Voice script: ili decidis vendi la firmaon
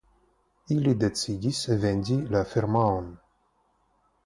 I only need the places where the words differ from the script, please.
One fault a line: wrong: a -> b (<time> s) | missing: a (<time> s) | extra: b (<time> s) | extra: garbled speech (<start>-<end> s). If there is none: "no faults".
no faults